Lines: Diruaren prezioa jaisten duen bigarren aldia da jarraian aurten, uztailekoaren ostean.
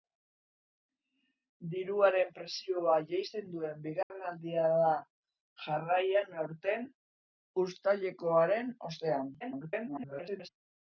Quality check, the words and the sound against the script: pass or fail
fail